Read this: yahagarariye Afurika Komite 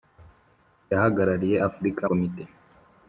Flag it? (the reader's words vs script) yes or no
no